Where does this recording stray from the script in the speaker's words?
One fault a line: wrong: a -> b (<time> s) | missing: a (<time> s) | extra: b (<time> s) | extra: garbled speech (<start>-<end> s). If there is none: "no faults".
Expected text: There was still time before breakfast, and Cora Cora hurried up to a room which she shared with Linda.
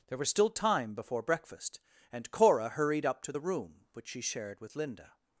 missing: Cora (2.7 s)
wrong: a -> the (3.3 s)